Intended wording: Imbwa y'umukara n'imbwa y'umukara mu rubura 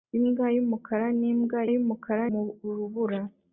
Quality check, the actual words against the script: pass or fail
pass